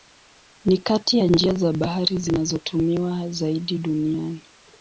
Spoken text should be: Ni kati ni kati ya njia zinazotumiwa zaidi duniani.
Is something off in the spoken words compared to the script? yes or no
yes